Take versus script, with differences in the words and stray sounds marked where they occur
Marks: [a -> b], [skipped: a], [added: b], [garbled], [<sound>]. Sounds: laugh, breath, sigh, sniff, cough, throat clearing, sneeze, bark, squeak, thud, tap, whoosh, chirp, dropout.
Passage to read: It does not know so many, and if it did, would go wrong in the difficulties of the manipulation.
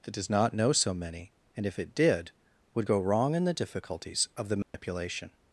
[It -> That] does not know so many, and if it did, would go wrong in the difficulties of the manipulation. [dropout]